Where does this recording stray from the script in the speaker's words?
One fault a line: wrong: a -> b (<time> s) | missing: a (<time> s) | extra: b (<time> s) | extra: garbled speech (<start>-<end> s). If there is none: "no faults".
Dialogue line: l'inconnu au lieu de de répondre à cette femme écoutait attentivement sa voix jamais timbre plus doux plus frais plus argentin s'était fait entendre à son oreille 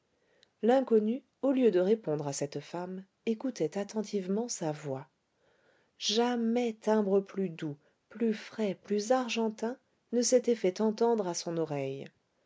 missing: de (1.8 s)
extra: ne (10.1 s)